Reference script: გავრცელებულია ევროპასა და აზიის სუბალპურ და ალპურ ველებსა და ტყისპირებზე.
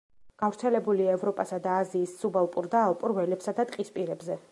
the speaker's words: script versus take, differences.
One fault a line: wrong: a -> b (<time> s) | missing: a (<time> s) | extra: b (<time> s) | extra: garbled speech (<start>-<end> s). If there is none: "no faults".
no faults